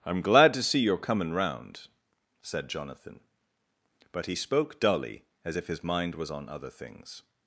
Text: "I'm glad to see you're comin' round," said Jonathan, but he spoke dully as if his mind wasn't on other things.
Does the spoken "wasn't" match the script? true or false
false